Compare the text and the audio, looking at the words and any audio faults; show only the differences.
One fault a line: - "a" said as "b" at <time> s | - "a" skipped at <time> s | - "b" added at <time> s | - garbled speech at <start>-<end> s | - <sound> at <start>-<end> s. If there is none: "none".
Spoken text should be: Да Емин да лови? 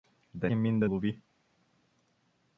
none